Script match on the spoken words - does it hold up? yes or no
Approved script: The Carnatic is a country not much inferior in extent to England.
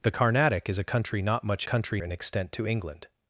no